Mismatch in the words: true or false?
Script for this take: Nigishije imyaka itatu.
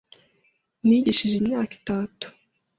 false